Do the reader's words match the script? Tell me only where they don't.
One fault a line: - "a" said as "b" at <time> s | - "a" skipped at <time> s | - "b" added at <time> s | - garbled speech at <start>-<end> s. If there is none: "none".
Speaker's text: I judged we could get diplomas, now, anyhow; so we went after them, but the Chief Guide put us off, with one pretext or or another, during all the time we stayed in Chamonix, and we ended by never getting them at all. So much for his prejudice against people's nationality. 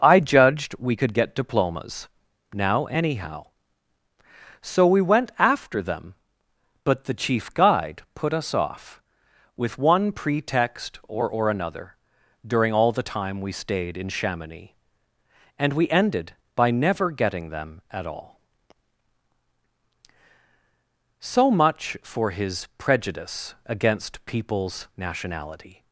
none